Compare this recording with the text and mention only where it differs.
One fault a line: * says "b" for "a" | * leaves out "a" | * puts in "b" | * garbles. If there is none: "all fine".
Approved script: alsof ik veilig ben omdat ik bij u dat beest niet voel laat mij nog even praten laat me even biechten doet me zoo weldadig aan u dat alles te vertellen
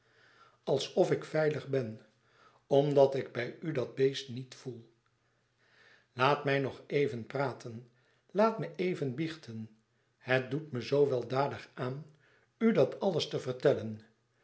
* puts in "het"